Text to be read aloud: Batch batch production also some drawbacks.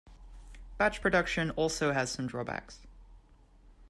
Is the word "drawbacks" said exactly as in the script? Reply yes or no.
yes